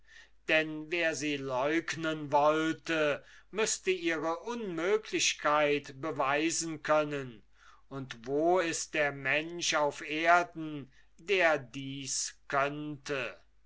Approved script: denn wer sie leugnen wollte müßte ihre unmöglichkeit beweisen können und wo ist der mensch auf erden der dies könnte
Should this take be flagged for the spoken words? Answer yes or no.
no